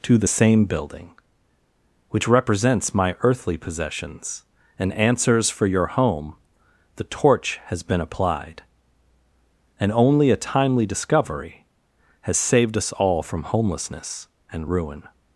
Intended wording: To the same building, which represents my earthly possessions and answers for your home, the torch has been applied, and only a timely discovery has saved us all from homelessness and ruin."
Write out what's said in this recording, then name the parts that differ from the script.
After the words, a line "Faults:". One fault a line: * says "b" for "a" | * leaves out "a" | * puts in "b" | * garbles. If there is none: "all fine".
To the same building, which represents my earthly possessions and answers for your home, the torch has been applied, and only a timely discovery has saved us all from homelessness and ruin."
Faults:
all fine